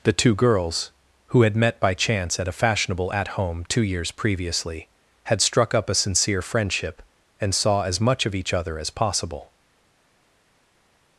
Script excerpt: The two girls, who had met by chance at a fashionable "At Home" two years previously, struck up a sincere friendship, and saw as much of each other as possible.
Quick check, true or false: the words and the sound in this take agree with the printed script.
false